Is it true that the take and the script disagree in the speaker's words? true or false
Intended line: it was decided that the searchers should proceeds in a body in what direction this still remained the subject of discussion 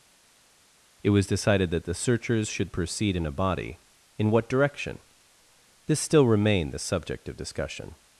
true